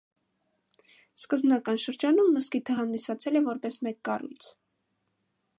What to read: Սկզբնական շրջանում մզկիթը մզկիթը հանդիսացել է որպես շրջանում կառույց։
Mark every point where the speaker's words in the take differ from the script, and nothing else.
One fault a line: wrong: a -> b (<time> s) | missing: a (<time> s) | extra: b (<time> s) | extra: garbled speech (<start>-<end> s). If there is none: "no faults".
missing: մզկիթը (2.8 s)
wrong: շրջանում -> մեկ (3.9 s)